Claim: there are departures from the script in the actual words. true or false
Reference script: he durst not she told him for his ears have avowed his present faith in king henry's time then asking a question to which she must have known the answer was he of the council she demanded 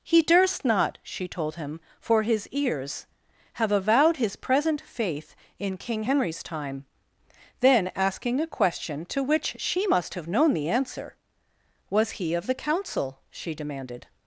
false